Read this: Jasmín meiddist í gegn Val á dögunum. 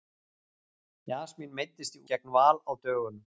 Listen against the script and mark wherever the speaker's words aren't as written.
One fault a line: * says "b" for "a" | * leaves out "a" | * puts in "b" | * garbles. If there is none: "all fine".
all fine